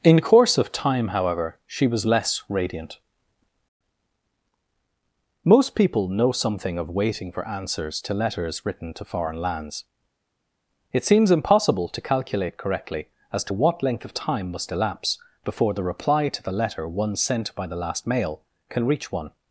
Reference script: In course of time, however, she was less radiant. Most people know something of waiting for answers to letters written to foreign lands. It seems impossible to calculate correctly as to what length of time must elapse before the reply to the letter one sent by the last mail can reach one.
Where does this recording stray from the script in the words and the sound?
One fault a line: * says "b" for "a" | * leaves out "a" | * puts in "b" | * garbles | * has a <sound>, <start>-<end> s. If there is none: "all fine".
all fine